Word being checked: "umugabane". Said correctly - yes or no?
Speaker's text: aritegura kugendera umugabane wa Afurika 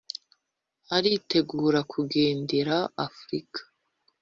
no